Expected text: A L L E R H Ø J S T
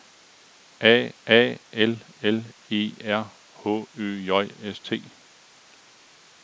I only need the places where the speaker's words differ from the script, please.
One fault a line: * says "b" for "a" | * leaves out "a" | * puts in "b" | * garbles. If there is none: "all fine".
* puts in "a"